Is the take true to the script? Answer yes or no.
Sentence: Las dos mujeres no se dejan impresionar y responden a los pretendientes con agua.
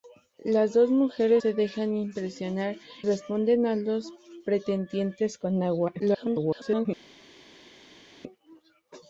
no